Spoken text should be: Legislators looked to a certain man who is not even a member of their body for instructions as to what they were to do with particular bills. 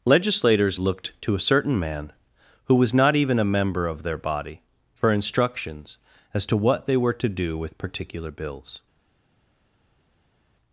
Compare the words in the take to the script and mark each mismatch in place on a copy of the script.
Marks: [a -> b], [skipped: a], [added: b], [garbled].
Legislators looked to a certain man who [is -> was] not even a member of their body for instructions as to what they were to do with particular bills.